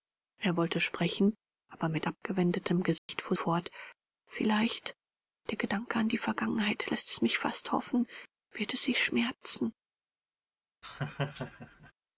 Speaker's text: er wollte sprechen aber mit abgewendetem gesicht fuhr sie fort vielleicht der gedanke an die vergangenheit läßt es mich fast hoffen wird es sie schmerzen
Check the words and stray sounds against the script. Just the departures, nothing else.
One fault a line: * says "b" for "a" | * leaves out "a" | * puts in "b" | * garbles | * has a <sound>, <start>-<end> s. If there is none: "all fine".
* has a dropout, 3.0-3.1 s
* leaves out "sie"
* has a laugh, 10.8-11.9 s